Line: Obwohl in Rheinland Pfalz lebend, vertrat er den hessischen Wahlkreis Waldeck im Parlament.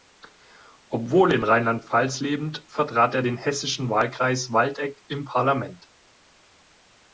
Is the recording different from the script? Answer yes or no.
no